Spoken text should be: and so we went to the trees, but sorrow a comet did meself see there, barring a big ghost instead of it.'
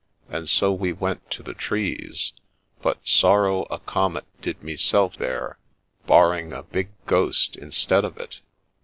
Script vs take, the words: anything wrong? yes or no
yes